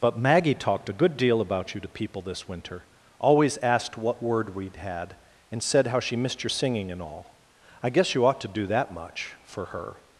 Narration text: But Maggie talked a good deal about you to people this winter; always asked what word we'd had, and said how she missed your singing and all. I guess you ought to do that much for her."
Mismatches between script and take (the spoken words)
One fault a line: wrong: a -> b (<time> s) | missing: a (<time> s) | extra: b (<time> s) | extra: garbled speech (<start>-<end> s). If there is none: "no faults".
no faults